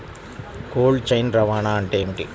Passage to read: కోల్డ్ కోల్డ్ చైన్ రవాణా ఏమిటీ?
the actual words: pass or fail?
fail